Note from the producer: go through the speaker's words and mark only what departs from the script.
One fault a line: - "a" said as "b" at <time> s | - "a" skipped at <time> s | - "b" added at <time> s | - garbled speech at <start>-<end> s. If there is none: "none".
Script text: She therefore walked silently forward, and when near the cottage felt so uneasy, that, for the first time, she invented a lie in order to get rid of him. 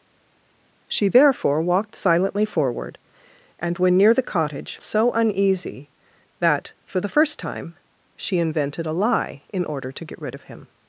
- "felt" skipped at 4.8 s